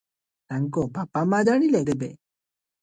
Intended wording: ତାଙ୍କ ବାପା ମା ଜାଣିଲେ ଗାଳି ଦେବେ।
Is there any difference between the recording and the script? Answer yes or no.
yes